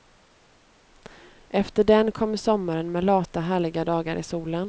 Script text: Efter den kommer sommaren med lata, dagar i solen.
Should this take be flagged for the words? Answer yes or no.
yes